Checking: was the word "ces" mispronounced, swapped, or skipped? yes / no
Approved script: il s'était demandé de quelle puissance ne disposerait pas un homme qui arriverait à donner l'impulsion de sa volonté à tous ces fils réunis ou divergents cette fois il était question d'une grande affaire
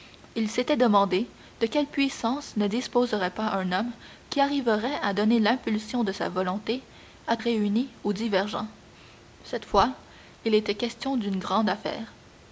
yes